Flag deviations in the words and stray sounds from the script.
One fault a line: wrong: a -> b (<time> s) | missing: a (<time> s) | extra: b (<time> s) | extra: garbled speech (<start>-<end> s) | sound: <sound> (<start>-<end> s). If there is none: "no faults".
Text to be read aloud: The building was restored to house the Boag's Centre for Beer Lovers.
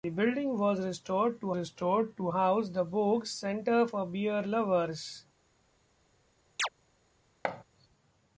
extra: restored to (1.5 s)
sound: chirp (6.6-6.7 s)
sound: thud (7.4-7.6 s)